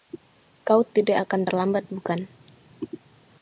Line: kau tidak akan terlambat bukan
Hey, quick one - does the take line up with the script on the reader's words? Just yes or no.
yes